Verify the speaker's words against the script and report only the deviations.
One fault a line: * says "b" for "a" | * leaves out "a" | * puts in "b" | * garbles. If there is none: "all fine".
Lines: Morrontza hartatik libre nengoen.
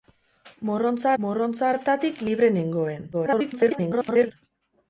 * puts in "morrontza"
* garbles